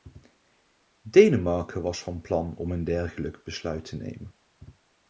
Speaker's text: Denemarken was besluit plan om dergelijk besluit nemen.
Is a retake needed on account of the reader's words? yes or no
yes